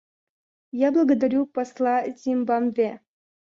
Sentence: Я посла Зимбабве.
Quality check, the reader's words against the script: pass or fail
fail